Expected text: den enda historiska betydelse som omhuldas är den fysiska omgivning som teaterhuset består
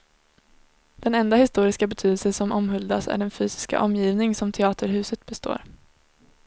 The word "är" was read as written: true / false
true